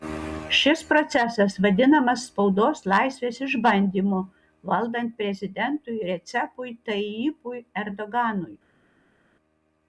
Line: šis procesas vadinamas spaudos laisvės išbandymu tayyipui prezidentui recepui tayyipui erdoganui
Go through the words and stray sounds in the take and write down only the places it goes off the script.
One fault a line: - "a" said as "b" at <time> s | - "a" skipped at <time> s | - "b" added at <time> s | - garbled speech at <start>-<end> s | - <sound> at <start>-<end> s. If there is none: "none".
- "tayyipui" said as "valdant" at 4.7 s